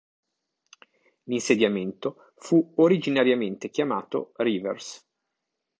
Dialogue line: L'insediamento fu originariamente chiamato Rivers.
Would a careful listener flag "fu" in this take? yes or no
no